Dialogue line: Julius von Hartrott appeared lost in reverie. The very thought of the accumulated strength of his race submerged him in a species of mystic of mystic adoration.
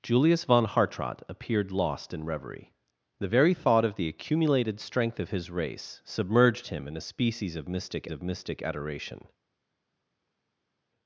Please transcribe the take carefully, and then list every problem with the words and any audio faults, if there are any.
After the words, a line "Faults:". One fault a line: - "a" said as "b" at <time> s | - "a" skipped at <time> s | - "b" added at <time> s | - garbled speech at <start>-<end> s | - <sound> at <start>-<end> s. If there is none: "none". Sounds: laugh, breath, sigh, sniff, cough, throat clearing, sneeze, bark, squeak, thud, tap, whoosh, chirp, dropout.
Julius von Hartrott appeared lost in reverie. The very thought of the accumulated strength of his race submerged him in a species of mystic of mystic adoration.
Faults:
none